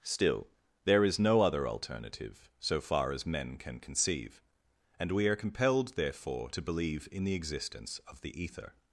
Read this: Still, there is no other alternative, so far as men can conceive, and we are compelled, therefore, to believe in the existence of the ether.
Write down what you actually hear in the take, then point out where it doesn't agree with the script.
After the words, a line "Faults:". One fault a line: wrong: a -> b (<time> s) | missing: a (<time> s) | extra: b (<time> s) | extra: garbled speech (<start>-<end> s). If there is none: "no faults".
Still, there is no other alternative, so far as men can conceive, and we are compelled, therefore, to believe in the existence of the ether.
Faults:
no faults